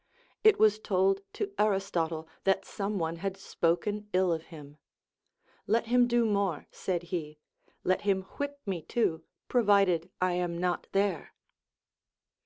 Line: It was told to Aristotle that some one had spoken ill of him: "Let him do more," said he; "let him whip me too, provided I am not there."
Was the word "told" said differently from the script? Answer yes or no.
no